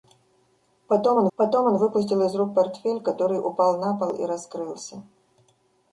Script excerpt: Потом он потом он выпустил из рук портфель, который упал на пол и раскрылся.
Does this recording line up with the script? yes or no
yes